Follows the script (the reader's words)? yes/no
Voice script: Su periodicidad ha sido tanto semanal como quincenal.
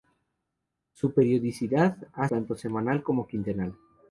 no